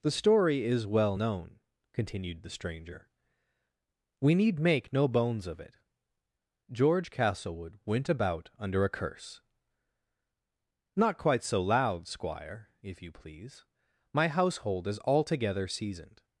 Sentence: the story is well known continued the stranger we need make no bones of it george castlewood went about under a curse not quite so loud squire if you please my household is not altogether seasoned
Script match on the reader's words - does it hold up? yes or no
no